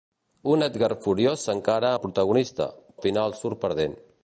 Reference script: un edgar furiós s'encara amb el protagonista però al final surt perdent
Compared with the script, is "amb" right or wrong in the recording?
wrong